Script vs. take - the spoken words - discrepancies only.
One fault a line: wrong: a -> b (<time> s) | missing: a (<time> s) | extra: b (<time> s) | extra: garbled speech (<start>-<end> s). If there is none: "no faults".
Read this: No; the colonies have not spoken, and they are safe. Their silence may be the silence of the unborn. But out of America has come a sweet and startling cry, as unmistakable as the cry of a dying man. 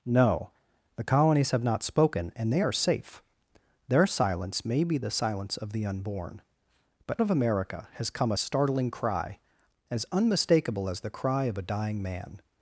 missing: out (7.2 s)
missing: sweet and (8.4 s)